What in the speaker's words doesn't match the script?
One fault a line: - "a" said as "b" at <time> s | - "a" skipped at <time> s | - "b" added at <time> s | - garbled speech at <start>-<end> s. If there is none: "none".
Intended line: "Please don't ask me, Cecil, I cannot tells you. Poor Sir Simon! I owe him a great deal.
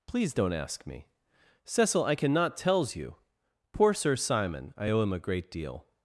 none